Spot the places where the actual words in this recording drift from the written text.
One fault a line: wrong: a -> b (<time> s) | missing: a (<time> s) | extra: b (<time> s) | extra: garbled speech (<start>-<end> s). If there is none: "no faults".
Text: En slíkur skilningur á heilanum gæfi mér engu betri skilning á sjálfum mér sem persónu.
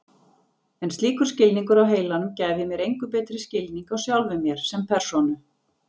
no faults